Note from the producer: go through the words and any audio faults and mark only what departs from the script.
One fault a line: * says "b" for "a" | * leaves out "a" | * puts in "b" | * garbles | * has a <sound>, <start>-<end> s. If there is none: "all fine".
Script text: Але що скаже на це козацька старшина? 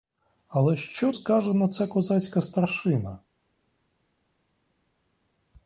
all fine